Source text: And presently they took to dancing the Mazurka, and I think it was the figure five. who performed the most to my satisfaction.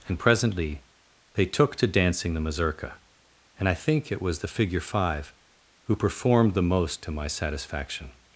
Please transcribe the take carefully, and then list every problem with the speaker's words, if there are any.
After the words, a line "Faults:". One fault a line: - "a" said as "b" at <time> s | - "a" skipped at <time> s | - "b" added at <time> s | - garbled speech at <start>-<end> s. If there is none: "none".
And presently they took to dancing the Mazurka, and I think it was the figure five. who performed the most to my satisfaction.
Faults:
none